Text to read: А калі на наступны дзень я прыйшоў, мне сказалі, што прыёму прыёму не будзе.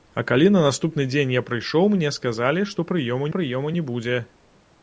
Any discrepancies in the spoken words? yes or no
no